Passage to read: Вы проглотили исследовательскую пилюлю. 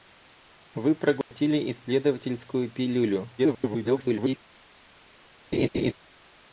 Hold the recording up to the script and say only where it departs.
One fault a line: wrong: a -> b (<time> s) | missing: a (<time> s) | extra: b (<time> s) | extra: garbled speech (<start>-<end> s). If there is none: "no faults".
extra: garbled speech (3.4-4.4 s)